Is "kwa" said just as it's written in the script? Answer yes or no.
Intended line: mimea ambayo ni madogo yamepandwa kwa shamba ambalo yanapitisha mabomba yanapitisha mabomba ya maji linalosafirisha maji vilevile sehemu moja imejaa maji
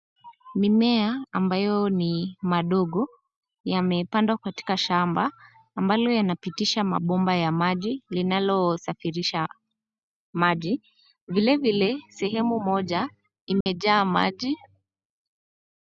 no